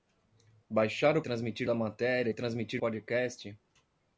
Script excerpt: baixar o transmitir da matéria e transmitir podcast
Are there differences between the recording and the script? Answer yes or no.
no